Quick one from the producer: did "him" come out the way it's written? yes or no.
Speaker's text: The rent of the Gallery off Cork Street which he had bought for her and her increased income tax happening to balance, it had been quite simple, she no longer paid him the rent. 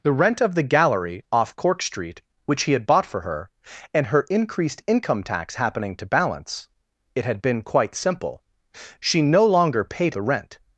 no